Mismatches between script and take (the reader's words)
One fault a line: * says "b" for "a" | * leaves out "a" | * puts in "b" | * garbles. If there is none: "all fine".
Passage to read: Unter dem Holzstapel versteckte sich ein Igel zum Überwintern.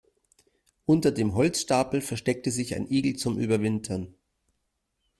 all fine